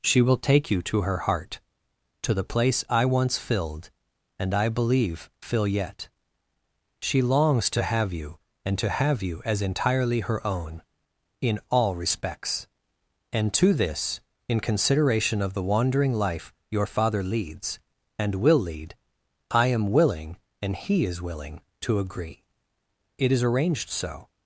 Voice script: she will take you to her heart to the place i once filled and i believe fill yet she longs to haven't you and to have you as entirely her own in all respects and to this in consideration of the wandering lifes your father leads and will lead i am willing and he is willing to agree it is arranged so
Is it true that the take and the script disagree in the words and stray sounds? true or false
true